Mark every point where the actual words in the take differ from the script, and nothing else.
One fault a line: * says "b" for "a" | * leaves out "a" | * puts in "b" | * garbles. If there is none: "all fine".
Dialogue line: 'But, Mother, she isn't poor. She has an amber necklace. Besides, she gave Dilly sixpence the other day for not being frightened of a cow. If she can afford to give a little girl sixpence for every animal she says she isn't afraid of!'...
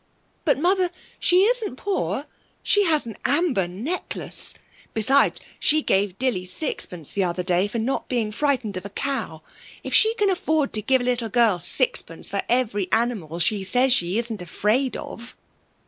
all fine